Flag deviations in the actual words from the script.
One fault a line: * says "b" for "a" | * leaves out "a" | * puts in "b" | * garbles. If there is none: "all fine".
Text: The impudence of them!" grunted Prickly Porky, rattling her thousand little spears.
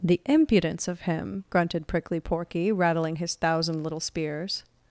* says "him" for "them"
* says "his" for "her"